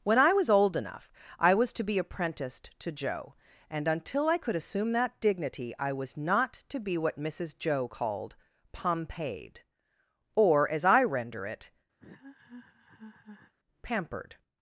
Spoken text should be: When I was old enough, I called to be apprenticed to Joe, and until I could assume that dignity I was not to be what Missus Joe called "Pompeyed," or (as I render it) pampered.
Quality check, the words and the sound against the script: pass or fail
fail